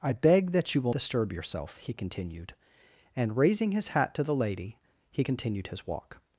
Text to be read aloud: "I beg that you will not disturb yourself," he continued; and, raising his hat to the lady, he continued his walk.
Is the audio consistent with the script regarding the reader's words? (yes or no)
no